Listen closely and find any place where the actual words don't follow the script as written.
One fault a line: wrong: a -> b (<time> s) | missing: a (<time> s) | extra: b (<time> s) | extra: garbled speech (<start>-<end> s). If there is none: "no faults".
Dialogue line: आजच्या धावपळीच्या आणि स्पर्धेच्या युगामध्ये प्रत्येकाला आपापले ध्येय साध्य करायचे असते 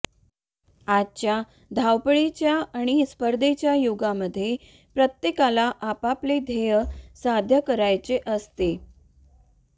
no faults